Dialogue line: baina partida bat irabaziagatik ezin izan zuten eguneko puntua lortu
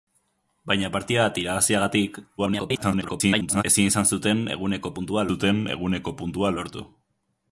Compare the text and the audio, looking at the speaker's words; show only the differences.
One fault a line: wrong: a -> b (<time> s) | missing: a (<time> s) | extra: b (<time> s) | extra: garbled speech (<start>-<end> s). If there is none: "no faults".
extra: garbled speech (2.4-3.6 s)
extra: zuten eguneko puntua (5.3 s)